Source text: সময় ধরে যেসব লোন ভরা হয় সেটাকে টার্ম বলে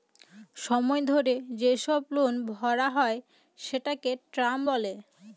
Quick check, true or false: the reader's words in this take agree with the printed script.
true